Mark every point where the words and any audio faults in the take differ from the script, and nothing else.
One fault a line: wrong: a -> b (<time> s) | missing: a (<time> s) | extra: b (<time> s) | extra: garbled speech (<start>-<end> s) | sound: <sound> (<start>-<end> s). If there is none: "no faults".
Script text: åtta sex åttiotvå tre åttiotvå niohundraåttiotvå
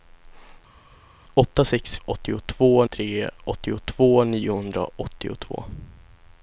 no faults